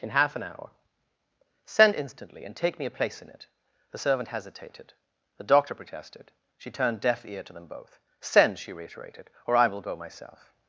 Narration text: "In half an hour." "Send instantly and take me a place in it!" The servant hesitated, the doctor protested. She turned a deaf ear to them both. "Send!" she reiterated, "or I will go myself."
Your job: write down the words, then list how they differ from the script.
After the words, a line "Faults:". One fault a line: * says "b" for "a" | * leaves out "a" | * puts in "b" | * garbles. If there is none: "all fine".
"In half an hour." "Send instantly and take me a place in it!" The servant hesitated, the doctor protested. She turned deaf ear to them both. "Send!" she reiterated, "or I will go myself."
Faults:
* leaves out "a"